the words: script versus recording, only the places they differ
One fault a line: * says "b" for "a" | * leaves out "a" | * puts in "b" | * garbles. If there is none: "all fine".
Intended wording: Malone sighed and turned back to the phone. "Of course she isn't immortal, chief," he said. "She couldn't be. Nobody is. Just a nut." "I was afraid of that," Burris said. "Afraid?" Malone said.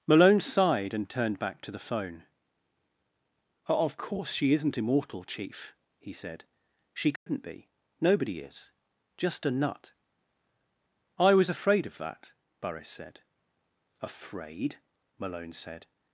all fine